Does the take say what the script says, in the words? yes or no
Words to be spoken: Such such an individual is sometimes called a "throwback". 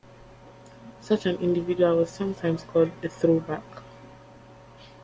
no